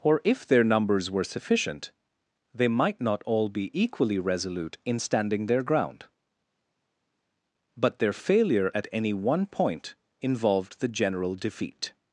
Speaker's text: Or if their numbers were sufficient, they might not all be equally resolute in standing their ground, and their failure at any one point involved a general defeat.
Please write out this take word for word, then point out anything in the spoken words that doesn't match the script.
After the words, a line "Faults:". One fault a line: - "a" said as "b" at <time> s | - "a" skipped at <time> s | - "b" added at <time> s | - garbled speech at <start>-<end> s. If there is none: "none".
Or if their numbers were sufficient, they might not all be equally resolute in standing their ground, but their failure at any one point involved the general defeat.
Faults:
- "and" said as "but" at 7.7 s
- "a" said as "the" at 10.8 s